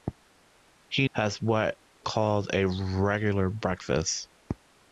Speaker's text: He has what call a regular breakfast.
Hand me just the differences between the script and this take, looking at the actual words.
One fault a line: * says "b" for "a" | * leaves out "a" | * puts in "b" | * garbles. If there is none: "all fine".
all fine